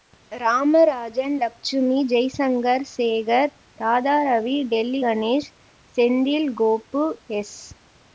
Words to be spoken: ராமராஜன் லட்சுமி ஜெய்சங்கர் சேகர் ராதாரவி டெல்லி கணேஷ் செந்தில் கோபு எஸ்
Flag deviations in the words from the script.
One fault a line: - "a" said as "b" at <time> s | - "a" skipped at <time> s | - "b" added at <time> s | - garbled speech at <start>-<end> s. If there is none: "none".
none